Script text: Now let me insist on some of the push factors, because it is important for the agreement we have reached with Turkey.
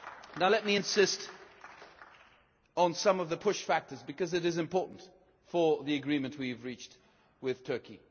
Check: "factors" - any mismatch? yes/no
no